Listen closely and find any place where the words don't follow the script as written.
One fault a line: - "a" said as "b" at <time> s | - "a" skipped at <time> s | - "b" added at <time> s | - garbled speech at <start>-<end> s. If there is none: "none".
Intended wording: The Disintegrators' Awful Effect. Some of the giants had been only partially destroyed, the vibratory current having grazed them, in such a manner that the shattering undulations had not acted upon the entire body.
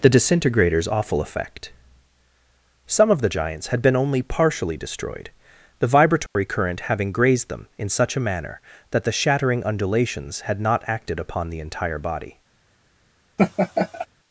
none